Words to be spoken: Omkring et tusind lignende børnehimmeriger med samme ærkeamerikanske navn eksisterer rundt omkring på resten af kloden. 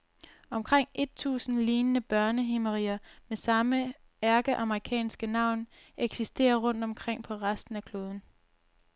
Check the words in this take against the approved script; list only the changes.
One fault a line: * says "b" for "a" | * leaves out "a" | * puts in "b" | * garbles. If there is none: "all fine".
all fine